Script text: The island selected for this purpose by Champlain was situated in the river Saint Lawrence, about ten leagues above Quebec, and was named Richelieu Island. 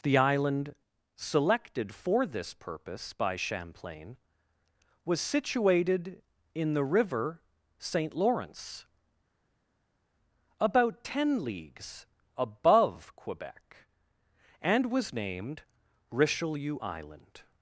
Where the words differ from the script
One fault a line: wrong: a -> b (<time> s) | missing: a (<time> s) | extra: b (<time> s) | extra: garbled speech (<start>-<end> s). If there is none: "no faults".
no faults